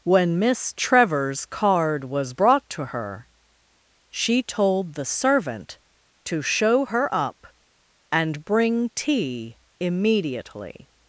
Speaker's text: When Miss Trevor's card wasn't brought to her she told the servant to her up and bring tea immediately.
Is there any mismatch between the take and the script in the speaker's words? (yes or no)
yes